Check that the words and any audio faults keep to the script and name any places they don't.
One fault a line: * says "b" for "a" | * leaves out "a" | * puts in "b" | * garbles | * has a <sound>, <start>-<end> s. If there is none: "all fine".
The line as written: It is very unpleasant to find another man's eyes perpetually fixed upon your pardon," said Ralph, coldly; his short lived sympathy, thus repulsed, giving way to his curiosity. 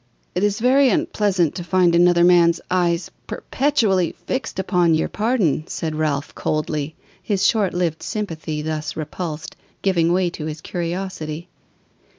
all fine